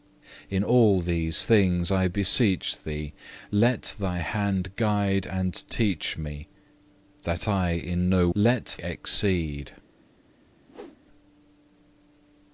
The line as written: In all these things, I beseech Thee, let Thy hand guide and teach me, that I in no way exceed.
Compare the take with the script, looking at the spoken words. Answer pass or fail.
fail